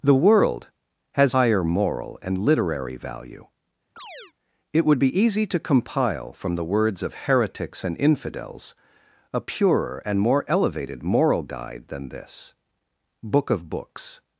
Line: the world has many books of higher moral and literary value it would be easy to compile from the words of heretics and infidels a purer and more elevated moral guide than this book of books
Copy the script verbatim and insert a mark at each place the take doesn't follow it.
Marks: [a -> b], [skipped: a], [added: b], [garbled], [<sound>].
the world has [skipped: many books of] higher moral and literary value [chirp] it would be easy to compile from the words of heretics and infidels a purer and more elevated moral guide than this book of books